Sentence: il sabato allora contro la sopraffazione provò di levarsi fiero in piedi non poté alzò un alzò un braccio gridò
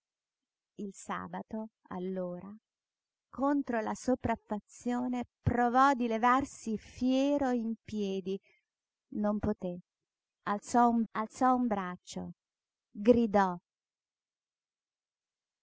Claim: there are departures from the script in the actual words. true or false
false